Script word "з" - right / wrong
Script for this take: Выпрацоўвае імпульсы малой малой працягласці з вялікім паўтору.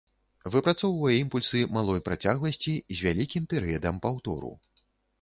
right